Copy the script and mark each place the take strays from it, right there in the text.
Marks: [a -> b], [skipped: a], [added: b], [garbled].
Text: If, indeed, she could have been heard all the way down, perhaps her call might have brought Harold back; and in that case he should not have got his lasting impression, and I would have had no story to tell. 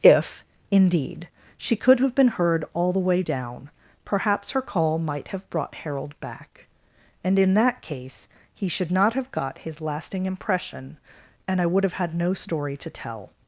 If, indeed, she could have been heard all the way down, perhaps her call might have brought Harold back; and in that case he should not have got his lasting impression, and I would have had no story to tell.